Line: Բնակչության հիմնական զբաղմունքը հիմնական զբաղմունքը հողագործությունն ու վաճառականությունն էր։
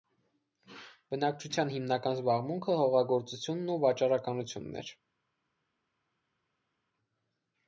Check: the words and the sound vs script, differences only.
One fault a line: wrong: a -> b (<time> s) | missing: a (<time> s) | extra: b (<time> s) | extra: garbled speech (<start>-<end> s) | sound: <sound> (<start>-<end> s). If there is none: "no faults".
missing: հիմնական զբաղմունքը (2.8 s)